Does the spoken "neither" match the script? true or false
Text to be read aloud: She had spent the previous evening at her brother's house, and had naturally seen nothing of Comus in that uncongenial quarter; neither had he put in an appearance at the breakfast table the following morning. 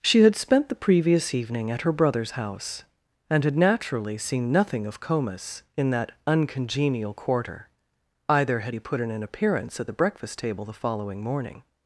false